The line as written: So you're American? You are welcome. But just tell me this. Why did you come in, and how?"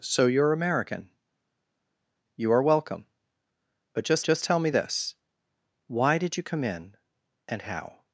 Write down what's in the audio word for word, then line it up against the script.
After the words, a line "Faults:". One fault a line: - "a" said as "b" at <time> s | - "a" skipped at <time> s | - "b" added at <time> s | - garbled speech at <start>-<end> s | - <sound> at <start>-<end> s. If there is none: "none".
So you're American? You are welcome. But just just tell me this. Why did you come in, and how?"
Faults:
- "just" added at 4.2 s